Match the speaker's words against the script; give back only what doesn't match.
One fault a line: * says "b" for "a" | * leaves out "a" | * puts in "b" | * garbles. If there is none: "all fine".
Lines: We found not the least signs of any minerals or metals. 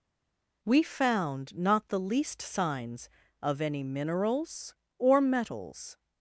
all fine